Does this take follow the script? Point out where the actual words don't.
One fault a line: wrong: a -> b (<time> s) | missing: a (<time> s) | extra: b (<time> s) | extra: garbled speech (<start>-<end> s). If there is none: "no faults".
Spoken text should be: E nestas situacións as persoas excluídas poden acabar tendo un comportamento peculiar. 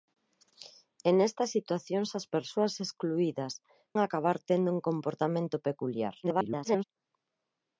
missing: poden (3.5 s)
extra: garbled speech (6.2-6.8 s)